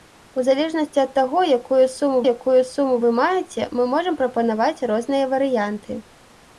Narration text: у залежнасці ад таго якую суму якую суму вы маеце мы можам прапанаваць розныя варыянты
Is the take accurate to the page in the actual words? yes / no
yes